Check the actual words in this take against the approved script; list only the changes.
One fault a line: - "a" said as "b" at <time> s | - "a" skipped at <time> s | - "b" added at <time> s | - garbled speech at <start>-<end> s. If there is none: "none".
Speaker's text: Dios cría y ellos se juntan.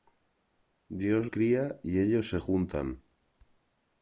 none